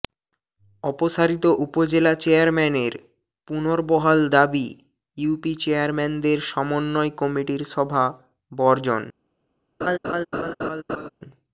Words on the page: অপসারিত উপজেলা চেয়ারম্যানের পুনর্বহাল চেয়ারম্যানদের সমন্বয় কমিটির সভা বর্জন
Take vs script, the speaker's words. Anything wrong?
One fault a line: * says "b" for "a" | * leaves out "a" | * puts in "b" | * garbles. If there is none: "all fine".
* puts in "দাবি ইউপি"